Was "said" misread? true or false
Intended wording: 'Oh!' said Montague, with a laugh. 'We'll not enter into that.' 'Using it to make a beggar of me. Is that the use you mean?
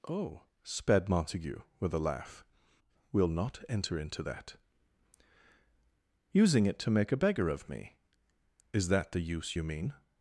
true